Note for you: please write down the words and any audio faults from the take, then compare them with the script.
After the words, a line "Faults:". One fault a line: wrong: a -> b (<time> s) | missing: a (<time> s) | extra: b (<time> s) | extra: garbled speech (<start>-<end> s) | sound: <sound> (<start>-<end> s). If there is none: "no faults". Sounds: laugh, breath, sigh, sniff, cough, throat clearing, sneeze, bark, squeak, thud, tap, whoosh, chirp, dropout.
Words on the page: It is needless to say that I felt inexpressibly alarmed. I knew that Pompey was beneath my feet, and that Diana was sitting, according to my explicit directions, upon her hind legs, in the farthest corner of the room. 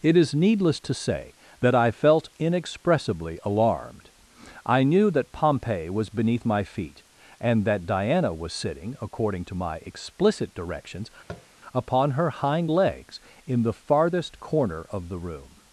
It is needless to say that I felt inexpressibly alarmed. I knew that Pompey was beneath my feet, and that Diana was sitting, according to my explicit directions, upon her hind legs, in the farthest corner of the room.
Faults:
sound: tap (11.3-11.5 s)